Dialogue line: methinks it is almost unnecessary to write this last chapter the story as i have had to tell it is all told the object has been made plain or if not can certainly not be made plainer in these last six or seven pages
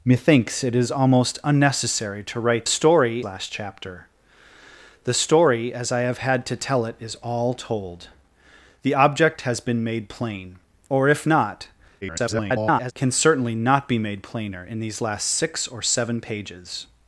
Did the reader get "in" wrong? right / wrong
right